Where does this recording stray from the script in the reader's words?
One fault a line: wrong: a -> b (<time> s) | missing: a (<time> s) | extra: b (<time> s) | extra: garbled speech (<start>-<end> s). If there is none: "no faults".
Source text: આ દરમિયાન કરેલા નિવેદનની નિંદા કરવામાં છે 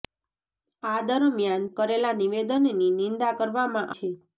no faults